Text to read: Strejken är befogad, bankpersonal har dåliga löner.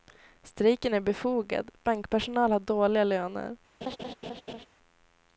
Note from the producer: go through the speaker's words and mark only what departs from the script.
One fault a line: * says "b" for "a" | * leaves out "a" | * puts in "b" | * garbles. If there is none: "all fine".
all fine